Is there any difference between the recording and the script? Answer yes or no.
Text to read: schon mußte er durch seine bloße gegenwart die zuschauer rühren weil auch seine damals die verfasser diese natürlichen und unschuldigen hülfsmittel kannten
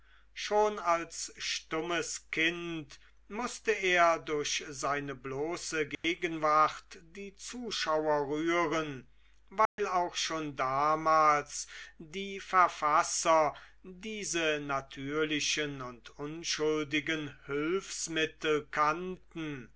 yes